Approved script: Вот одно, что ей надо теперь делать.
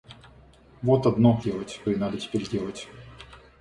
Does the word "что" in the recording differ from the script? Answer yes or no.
yes